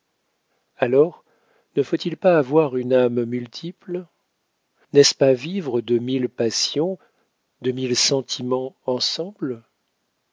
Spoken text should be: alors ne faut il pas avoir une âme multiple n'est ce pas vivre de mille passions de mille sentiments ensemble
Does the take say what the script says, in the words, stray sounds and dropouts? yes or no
yes